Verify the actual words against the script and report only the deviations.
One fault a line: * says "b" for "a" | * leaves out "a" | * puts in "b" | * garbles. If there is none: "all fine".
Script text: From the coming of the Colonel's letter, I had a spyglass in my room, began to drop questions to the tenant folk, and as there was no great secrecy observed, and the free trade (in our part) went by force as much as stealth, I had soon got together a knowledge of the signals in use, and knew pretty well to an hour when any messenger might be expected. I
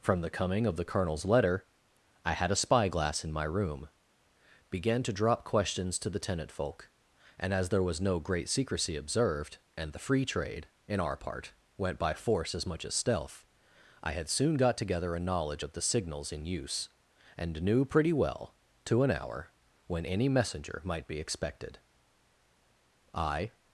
all fine